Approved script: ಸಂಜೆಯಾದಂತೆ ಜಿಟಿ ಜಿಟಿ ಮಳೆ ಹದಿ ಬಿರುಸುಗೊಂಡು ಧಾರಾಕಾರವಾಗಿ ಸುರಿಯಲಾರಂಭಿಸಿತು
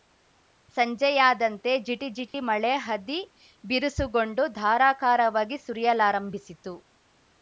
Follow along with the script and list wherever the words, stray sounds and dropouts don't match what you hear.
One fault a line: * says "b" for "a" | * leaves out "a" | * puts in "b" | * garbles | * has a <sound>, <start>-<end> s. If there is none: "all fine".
* has a dropout, 2.3-2.3 s